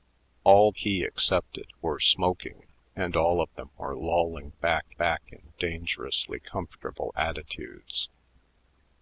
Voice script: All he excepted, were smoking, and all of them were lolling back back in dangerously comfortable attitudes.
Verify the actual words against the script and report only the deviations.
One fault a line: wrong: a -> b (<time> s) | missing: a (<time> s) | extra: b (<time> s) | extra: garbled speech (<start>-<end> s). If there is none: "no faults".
no faults